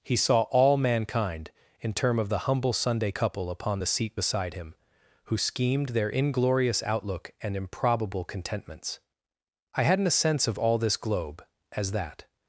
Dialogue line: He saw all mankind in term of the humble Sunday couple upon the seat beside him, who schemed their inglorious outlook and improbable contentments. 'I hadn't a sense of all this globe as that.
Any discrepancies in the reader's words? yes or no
no